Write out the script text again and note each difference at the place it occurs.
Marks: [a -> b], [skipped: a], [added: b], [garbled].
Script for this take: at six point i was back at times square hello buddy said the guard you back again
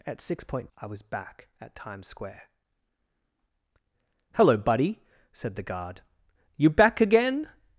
at six point i was back at times square hello buddy said the guard you back again